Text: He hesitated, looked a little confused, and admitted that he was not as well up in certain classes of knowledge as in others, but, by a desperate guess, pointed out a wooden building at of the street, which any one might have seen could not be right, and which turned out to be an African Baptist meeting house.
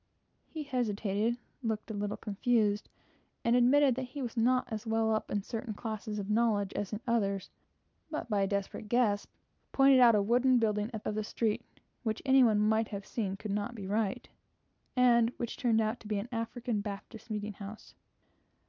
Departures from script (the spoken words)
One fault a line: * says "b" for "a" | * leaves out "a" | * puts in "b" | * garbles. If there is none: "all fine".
all fine